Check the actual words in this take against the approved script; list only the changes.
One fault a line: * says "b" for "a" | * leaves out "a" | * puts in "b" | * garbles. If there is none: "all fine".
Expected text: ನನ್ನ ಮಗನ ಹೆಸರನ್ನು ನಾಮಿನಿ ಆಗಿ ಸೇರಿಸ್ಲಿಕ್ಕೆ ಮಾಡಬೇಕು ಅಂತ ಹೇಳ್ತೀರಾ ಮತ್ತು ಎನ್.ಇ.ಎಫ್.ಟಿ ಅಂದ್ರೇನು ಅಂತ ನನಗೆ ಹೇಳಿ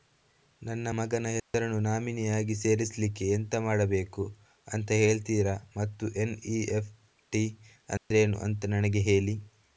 * puts in "ಎಂತ"